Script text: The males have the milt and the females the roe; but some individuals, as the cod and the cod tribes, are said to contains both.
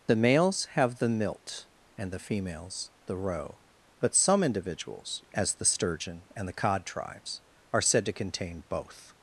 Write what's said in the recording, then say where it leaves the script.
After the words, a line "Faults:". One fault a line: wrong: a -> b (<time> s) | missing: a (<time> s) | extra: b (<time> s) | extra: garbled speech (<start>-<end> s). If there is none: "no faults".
The males have the milt and the females the roe; but some individuals, as the sturgeon and the cod tribes, are said to contain both.
Faults:
wrong: cod -> sturgeon (5.6 s)
wrong: contains -> contain (8.1 s)